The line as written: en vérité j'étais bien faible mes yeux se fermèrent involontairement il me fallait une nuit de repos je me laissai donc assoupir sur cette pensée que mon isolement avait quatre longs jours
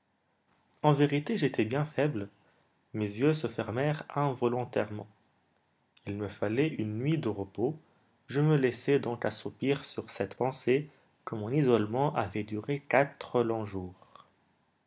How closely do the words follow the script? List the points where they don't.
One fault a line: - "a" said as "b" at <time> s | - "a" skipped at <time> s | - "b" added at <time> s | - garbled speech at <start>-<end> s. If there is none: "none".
- "duré" added at 12.4 s